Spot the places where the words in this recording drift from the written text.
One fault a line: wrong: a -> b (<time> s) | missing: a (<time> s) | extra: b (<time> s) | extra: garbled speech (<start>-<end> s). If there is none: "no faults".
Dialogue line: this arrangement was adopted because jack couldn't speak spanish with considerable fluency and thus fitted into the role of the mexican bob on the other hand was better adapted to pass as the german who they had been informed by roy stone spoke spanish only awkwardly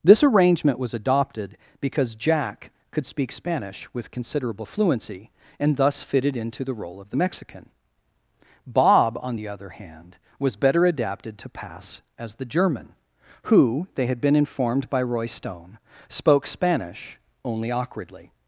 wrong: couldn't -> could (2.9 s)